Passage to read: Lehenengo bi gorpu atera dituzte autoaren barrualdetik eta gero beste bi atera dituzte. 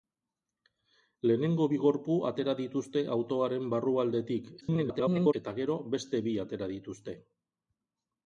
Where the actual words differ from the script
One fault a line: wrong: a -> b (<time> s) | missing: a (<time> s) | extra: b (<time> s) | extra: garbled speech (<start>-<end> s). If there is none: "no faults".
extra: garbled speech (4.6-5.3 s)